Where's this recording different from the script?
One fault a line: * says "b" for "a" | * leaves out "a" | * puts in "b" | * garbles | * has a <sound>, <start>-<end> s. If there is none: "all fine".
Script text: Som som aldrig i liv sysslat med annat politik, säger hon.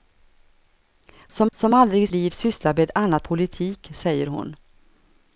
all fine